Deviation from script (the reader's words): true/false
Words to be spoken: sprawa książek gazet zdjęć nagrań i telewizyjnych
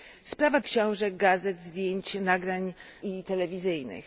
false